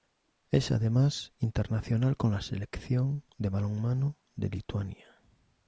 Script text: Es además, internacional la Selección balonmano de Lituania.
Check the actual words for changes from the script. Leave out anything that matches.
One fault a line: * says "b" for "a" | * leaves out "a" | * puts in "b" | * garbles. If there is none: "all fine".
* puts in "con"
* puts in "de"